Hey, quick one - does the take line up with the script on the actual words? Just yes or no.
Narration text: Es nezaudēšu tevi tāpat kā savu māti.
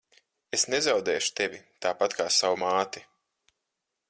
yes